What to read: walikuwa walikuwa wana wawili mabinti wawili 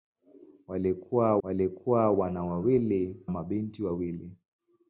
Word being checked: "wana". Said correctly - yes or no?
yes